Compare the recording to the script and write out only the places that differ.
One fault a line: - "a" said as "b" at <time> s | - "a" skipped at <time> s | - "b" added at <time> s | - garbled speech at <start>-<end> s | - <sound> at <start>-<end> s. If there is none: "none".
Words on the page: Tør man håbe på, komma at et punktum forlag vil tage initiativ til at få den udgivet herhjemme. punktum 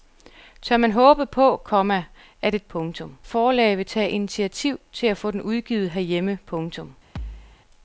- thud at 7.2-7.6 s